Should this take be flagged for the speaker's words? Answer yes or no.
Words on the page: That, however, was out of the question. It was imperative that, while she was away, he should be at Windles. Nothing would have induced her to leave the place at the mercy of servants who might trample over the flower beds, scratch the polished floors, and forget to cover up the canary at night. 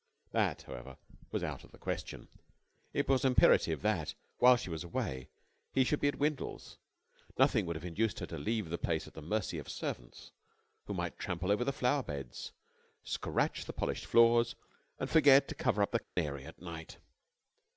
no